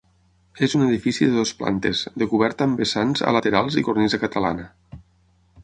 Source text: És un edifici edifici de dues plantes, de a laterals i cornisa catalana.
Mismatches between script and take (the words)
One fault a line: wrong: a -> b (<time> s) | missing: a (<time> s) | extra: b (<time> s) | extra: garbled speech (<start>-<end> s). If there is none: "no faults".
missing: edifici (1.3 s)
extra: coberta amb vessants (2.3 s)